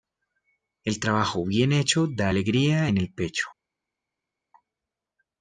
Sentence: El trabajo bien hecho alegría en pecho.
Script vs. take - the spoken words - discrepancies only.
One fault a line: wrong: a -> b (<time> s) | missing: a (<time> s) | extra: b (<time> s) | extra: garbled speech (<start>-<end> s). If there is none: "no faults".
extra: da (2.1 s)
extra: el (3.0 s)